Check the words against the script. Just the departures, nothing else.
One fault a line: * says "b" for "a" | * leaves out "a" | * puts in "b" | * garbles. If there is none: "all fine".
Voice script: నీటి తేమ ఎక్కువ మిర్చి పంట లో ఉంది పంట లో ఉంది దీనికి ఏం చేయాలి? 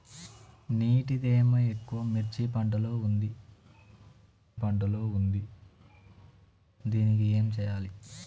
all fine